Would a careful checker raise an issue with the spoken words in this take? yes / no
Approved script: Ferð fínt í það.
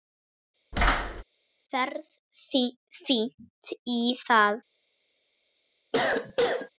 no